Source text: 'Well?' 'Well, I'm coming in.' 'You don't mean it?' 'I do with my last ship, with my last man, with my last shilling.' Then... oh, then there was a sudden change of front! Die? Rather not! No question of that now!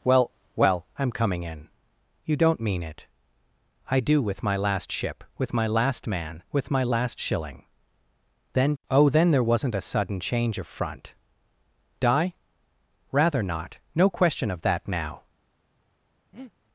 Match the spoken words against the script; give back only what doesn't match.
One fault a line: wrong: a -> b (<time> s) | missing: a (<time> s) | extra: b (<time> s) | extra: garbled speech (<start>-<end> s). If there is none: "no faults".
wrong: was -> wasn't (9.4 s)